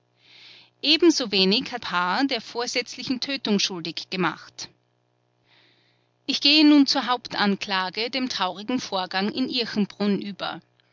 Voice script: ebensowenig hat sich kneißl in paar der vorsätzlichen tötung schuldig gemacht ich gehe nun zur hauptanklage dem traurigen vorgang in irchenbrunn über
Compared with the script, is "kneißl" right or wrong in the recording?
wrong